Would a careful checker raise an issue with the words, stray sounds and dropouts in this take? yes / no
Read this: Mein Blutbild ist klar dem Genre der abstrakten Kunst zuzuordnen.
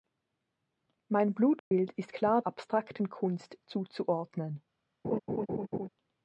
yes